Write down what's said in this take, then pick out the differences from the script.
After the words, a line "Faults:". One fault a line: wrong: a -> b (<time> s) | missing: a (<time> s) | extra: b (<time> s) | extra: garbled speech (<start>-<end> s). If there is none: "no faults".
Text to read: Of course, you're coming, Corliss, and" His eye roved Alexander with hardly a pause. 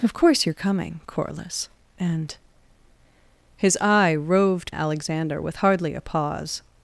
Of course, you're coming, Corliss, and" His eye roved Alexander with hardly a pause.
Faults:
no faults